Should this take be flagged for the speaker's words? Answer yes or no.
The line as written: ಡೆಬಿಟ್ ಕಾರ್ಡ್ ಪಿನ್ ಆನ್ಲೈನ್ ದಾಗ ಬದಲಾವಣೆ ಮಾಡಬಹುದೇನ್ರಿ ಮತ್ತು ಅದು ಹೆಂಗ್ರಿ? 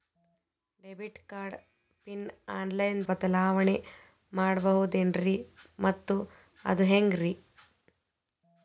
yes